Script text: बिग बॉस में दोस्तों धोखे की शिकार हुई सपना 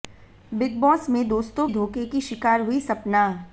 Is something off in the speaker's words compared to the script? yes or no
no